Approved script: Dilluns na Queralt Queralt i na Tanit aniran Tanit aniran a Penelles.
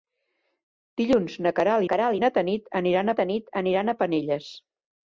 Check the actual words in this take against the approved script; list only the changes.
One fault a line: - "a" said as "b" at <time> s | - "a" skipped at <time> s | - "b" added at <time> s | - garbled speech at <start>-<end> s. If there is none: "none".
none